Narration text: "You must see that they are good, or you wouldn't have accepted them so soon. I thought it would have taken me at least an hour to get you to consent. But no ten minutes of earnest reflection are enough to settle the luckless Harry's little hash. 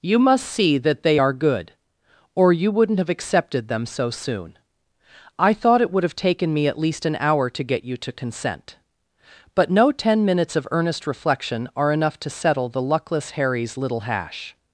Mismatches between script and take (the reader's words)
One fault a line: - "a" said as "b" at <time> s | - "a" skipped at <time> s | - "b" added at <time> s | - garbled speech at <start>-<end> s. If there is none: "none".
none